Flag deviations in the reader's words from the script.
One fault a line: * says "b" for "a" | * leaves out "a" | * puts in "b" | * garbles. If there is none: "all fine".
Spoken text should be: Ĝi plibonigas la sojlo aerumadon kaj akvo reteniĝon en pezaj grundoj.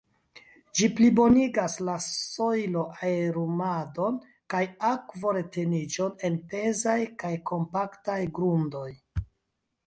* puts in "kaj kompaktaj"